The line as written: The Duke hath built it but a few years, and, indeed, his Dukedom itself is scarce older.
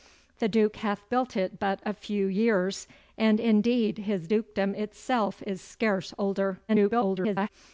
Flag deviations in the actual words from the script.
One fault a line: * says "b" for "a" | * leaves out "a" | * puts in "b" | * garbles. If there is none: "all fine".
* garbles